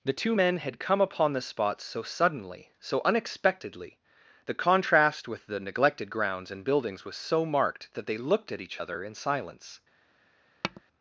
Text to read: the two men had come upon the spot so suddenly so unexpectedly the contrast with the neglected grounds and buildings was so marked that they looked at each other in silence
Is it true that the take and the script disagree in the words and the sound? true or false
true